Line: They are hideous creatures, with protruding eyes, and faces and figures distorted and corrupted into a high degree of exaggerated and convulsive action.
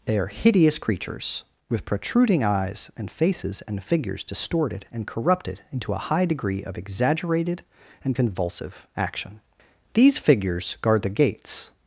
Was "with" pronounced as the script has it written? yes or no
yes